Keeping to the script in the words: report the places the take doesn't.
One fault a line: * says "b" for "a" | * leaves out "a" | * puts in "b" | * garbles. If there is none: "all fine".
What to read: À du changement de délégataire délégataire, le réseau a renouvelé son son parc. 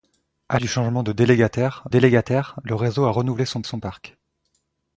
all fine